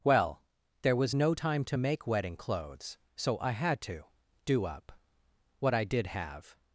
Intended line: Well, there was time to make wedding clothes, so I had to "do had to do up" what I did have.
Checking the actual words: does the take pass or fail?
fail